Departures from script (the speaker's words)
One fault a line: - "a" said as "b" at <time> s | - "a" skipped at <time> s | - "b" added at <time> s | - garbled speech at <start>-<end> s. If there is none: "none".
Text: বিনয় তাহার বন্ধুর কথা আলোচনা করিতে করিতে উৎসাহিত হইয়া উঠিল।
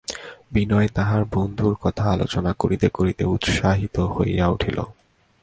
none